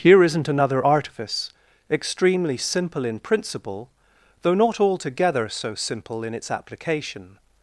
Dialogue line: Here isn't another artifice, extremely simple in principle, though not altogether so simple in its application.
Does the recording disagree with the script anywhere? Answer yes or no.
no